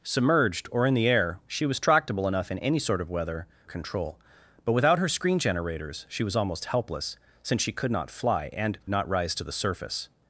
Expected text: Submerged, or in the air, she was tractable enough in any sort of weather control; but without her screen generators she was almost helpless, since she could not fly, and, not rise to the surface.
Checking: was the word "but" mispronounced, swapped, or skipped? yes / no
no